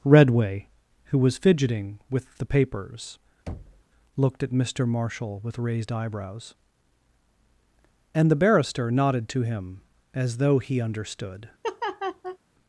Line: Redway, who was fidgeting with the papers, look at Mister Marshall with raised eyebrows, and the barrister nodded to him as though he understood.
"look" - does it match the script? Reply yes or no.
no